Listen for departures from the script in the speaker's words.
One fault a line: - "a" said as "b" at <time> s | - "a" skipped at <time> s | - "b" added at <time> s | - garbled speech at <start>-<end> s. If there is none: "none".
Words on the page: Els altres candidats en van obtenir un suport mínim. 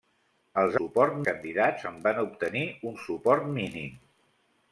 - "altres" said as "suport" at 0.8 s